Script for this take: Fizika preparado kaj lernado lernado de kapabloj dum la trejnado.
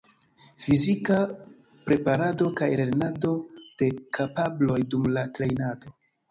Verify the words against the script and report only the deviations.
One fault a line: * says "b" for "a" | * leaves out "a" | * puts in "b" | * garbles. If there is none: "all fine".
* leaves out "lernado"